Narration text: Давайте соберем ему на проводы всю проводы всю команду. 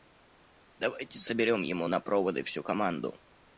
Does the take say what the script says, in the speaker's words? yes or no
no